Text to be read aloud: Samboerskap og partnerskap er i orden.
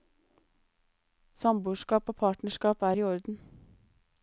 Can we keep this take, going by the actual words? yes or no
yes